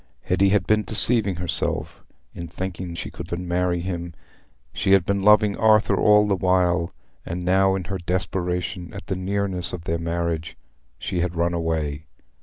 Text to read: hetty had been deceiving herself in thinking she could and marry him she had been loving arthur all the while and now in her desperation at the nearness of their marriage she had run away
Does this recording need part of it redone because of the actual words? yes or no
no